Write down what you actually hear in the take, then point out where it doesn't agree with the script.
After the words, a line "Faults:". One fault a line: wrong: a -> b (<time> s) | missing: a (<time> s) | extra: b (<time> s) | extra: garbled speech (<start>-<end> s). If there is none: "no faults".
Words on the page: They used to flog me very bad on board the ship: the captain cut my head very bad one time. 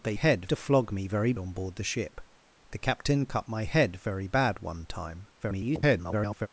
They head to flog me very on board the ship: the captain cut my head very bad one time. [garbled]
Faults:
wrong: used -> head (0.1 s)
missing: bad (1.3 s)
extra: garbled speech (5.4-6.5 s)